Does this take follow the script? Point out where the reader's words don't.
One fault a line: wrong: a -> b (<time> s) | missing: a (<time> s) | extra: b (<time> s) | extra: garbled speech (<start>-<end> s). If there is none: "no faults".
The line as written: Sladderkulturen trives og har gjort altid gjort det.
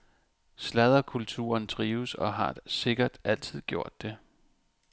wrong: gjort -> sikkert (2.7 s)